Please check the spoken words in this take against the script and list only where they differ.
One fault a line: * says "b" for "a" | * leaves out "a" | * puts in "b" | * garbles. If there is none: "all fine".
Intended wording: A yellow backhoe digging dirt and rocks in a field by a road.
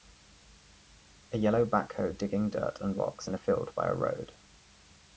all fine